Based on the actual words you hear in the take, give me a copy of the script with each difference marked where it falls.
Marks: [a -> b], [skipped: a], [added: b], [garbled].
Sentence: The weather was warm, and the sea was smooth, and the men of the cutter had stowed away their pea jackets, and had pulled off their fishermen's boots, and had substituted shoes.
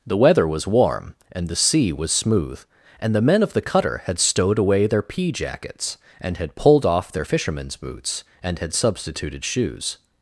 The weather was warm, and the sea was smooth, and the men of the cutter had stowed away their pea jackets, and had pulled off their fishermen's boots, and had substituted shoes.